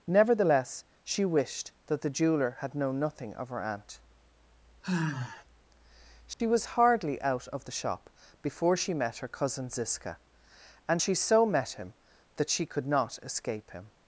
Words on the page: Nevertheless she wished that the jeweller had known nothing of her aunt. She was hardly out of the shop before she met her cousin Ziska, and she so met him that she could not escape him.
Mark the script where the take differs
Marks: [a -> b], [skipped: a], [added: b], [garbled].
Nevertheless she wished that the jeweller had known nothing of her aunt. She was hardly out of the shop before she met her cousin Ziska, and she so met him that she could not escape him.